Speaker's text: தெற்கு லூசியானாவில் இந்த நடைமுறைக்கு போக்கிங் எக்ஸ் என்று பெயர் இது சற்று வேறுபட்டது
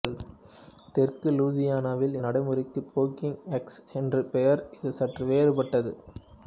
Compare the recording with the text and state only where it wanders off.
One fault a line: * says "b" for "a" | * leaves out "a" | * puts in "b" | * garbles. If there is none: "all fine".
* leaves out "இந்த"